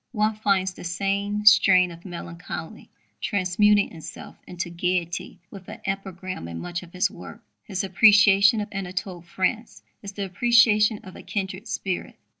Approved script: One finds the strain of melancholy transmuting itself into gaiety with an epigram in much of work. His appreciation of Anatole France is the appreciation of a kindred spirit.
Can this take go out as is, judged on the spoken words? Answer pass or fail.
fail